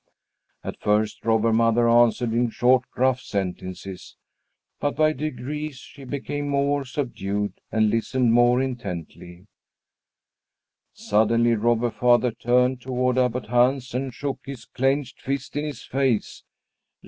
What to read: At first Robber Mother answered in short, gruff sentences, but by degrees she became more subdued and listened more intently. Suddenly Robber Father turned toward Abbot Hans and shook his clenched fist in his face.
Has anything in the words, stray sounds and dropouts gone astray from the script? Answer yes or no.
no